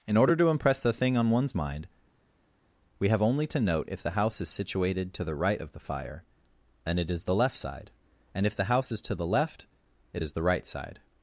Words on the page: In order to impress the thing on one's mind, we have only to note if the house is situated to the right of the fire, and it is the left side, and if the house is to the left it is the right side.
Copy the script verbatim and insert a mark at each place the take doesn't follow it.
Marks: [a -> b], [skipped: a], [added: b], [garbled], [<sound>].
In order to impress the thing on one's mind, we have only to note if the house is situated to the right of the fire, and it is the left side, and if the house is to the left it is the right side.